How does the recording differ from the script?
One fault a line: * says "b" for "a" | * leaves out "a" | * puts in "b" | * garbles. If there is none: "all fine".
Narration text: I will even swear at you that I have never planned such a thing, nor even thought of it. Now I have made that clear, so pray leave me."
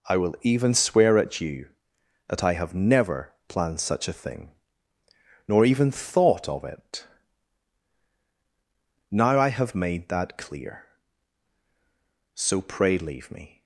all fine